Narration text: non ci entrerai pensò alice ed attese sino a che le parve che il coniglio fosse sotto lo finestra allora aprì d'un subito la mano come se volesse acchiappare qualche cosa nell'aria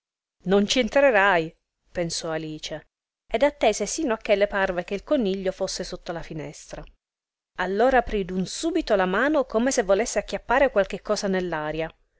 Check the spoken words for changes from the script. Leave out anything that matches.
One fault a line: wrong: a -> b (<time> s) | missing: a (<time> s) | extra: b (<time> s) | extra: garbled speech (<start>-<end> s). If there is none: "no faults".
wrong: lo -> la (6.1 s)